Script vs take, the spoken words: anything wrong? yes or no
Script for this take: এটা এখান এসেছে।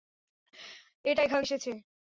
no